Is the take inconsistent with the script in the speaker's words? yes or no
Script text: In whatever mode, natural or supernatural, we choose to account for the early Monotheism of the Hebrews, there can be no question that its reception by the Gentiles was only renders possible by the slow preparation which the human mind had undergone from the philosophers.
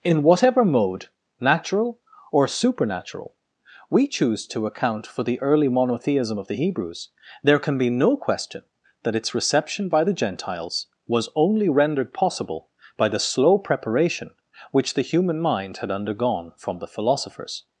yes